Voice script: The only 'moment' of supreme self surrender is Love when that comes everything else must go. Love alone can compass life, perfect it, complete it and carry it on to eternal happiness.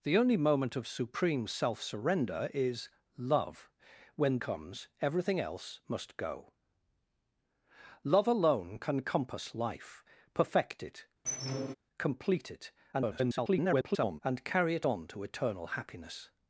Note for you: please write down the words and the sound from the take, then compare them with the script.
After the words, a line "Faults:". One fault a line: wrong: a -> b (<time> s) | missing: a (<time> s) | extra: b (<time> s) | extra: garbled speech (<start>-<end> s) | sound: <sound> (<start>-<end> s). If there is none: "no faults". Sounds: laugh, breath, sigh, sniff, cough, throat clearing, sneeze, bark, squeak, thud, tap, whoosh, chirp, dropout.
The only 'moment' of supreme self surrender is Love when comes everything else must go. Love alone can compass life, perfect it, complete it [garbled] and carry it on to eternal happiness.
Faults:
missing: that (4.4 s)
sound: squeak (11.3-11.8 s)
extra: garbled speech (12.9-14.2 s)